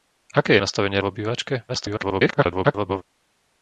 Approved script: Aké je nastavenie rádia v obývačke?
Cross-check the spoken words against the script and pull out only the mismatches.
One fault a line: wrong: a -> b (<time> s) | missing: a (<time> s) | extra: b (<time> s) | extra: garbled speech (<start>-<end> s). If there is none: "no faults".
missing: rádia (1.0 s)
extra: garbled speech (1.7-3.0 s)